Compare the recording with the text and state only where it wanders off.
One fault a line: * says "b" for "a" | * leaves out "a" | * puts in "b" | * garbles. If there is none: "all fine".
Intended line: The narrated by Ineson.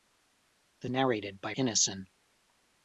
all fine